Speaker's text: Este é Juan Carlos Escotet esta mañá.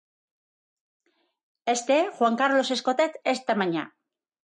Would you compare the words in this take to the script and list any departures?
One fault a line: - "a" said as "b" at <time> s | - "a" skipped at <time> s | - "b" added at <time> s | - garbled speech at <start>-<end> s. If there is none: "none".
none